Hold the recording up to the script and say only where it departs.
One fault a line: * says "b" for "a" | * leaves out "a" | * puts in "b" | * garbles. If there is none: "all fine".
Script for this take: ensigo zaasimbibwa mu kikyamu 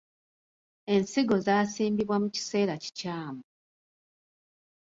* puts in "kiseera"